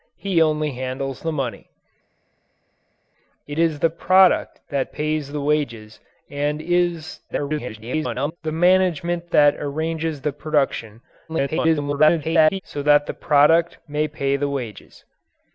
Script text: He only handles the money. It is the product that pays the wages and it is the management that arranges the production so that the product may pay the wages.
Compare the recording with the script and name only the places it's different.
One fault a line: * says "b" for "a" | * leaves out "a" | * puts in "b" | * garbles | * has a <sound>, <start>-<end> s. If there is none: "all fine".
* garbles
* garbles